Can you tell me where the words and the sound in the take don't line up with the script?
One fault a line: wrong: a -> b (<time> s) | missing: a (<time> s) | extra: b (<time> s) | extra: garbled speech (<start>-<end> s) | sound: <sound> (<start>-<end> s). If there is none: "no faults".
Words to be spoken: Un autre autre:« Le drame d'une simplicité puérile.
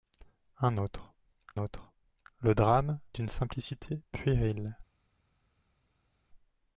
no faults